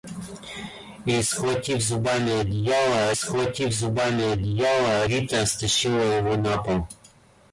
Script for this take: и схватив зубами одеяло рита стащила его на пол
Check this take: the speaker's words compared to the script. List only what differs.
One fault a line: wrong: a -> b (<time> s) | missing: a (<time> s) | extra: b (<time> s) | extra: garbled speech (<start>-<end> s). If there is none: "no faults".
extra: схватив зубами одеяло (3.1 s)